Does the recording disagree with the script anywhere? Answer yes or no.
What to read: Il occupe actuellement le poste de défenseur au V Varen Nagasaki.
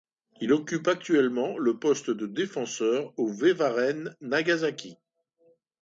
no